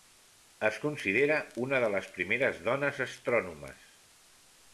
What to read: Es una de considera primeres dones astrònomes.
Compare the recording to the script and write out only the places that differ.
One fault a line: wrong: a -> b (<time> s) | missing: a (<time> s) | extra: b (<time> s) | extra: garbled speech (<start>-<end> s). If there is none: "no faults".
extra: considera (0.8 s)
wrong: considera -> les (2.0 s)